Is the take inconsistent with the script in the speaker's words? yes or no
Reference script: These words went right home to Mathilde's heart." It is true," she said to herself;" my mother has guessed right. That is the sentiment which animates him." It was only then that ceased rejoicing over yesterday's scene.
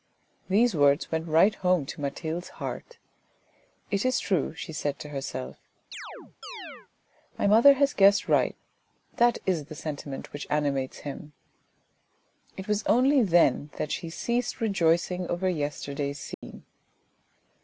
yes